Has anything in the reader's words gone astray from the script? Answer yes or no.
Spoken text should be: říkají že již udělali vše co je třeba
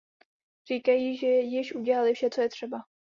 no